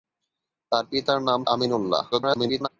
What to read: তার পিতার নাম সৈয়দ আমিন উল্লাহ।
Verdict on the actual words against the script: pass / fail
fail